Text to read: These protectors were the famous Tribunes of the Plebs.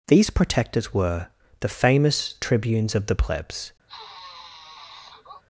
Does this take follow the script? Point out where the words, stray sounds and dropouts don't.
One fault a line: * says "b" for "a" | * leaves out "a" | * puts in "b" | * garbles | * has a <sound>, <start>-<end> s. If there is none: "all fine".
* has a sniff, 3.9-5.4 s